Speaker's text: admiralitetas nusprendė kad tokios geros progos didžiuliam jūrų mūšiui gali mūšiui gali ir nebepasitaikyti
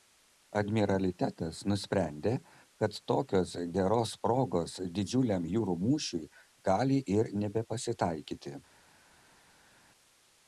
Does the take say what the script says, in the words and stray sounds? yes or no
no